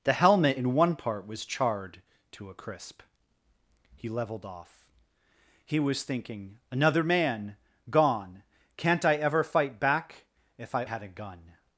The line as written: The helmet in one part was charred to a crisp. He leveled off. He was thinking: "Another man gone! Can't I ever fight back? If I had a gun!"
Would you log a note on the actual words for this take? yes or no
no